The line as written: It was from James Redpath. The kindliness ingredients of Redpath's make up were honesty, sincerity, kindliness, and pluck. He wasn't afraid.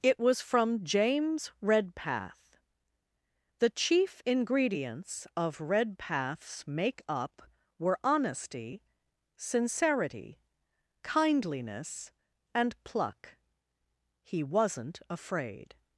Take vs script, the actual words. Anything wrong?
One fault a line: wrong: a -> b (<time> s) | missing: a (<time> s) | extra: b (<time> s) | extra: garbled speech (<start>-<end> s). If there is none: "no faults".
wrong: kindliness -> chief (3.7 s)